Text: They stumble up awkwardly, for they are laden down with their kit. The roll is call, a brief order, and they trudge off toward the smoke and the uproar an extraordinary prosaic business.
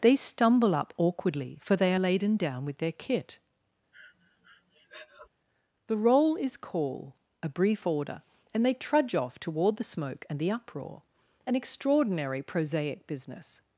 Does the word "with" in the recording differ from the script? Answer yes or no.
no